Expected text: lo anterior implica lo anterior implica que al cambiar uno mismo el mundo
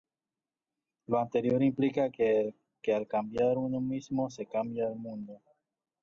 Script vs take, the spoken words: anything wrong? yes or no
yes